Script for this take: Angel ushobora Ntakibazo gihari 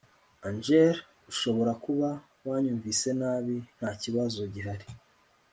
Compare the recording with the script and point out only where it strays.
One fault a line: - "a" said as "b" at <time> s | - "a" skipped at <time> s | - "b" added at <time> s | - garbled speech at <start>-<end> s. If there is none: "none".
- "kuba wanyumvise nabi" added at 1.9 s